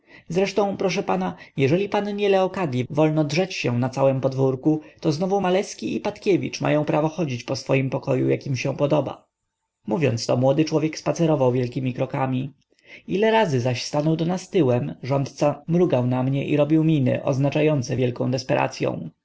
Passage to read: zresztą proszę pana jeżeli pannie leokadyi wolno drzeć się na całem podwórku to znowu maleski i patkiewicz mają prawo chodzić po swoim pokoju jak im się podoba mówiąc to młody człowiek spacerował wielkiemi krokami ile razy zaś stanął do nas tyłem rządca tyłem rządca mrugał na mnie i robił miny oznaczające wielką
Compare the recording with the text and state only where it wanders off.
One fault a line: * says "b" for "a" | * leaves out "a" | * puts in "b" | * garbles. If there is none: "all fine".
* leaves out "tyłem rządca"